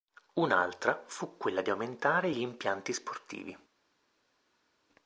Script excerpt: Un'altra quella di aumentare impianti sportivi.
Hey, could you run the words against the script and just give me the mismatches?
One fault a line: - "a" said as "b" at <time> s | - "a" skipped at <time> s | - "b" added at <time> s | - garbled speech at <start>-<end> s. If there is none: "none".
- "fu" added at 1.1 s
- "gli" added at 2.3 s